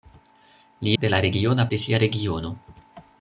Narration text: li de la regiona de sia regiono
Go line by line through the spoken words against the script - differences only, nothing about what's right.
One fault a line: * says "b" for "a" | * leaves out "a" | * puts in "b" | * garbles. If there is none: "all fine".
all fine